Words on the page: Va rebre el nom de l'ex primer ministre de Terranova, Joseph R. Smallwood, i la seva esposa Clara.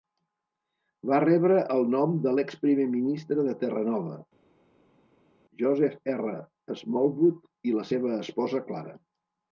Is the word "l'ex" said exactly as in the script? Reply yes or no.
yes